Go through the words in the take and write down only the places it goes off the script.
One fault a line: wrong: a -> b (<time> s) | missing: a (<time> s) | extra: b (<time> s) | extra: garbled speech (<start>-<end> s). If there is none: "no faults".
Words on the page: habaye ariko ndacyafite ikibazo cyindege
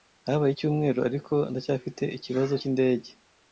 extra: icyumweru (0.5 s)